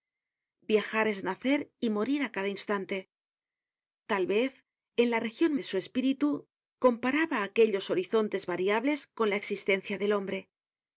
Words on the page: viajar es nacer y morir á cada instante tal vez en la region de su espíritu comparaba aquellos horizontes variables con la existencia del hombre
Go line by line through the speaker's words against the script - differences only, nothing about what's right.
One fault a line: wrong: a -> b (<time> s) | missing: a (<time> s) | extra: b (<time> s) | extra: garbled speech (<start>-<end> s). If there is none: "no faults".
no faults